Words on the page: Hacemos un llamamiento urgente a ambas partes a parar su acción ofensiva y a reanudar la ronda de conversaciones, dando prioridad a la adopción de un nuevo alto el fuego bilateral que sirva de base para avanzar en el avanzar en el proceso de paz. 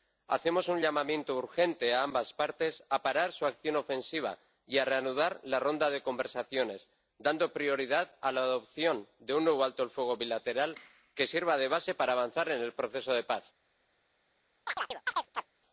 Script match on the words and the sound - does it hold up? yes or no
no